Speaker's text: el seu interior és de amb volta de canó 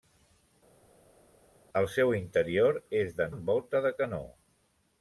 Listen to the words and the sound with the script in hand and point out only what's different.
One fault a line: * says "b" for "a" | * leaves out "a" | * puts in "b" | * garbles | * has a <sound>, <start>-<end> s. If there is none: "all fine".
all fine